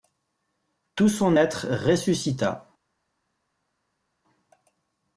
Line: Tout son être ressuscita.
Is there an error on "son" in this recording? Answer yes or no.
no